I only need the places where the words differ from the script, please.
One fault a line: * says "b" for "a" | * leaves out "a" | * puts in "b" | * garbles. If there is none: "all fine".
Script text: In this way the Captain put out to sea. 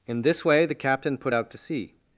all fine